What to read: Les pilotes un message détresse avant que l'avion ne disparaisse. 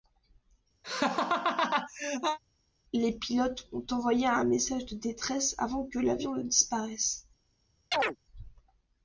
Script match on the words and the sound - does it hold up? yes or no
no